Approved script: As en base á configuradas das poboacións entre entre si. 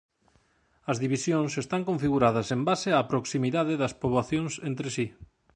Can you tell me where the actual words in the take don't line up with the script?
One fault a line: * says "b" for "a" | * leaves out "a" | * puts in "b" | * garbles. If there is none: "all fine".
* puts in "divisións están configuradas"
* says "proximidade" for "configuradas"
* leaves out "entre"